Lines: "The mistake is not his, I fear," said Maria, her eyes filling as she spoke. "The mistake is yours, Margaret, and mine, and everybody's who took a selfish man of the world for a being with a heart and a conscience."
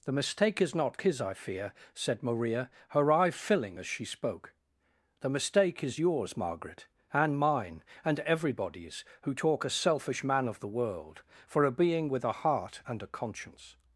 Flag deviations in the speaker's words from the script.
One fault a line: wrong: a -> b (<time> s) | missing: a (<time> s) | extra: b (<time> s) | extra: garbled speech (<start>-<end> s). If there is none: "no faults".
wrong: eyes -> eye (3.1 s)
wrong: took -> talk (9.3 s)